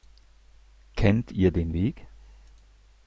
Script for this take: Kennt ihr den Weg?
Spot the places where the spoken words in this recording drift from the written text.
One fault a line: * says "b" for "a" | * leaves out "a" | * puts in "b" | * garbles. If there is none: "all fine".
all fine